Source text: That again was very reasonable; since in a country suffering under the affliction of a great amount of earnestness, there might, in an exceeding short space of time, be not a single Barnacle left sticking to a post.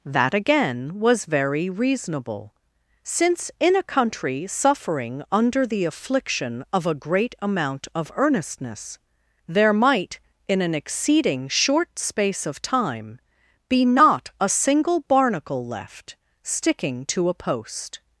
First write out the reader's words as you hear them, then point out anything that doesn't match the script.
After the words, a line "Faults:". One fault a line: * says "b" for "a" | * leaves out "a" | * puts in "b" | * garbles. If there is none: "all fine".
That again was very reasonable; since in a country suffering under the affliction of a great amount of earnestness, there might, in an exceeding short space of time, be not a single Barnacle left sticking to a post.
Faults:
all fine